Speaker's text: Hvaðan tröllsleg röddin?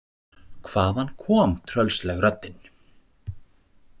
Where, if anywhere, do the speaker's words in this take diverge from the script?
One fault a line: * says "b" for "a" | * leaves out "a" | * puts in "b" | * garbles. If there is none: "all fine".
* puts in "kom"